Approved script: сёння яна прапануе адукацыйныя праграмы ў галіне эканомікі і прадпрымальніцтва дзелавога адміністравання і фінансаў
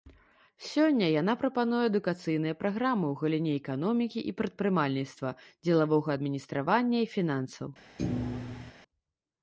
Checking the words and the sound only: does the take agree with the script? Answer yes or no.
no